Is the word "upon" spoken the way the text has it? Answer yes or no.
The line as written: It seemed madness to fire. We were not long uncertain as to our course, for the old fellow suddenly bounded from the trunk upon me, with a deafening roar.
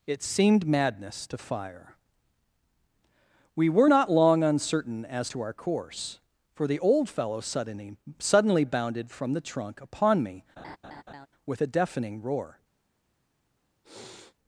yes